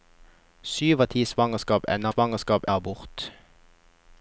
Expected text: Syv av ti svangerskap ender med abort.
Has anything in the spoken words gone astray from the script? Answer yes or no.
yes